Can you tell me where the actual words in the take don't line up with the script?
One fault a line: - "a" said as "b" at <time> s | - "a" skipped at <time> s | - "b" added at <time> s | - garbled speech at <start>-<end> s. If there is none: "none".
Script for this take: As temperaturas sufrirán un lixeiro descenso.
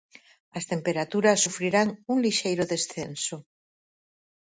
none